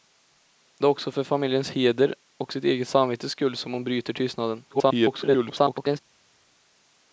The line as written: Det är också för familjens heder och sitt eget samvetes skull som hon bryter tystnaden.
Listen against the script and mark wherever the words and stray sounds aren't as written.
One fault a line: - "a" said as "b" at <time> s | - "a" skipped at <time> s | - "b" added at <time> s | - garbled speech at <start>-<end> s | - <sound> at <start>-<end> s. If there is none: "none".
- garbled speech at 4.7-6.0 s